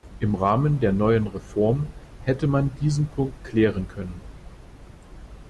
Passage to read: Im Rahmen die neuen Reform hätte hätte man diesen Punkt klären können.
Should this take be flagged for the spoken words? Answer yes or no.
yes